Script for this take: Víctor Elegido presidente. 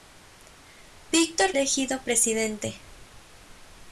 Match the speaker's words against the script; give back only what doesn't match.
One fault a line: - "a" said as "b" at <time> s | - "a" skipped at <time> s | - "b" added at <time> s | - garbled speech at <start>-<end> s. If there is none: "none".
none